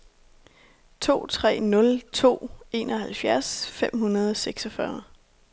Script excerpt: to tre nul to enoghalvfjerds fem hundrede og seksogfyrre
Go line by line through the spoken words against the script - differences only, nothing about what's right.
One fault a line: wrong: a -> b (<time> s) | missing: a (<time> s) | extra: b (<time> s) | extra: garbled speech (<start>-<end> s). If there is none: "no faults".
no faults